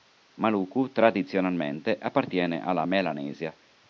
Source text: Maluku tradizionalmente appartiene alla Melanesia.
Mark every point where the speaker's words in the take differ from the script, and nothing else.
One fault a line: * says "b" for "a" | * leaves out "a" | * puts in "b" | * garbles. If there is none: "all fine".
all fine